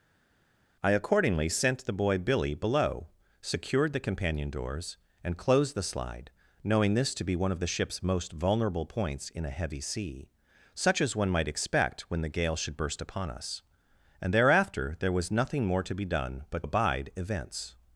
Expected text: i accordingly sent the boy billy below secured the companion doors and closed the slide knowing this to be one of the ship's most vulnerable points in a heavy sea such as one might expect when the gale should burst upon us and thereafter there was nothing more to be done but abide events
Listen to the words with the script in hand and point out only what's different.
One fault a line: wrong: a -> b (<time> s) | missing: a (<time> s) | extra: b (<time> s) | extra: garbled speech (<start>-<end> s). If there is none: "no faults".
no faults